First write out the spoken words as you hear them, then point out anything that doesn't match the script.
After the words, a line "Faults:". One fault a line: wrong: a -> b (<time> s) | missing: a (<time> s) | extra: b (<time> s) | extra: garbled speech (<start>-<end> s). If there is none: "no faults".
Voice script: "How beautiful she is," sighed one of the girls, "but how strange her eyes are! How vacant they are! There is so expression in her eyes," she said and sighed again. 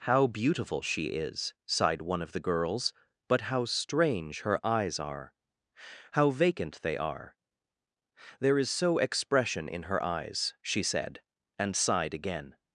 "How beautiful she is," sighed one of the girls, "but how strange her eyes are! How vacant they are! There is so expression in her eyes," she said and sighed again.
Faults:
no faults